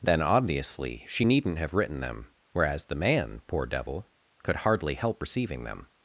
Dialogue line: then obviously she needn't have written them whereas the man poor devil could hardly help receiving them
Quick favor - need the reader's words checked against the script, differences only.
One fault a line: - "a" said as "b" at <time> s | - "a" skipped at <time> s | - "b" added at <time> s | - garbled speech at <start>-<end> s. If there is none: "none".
none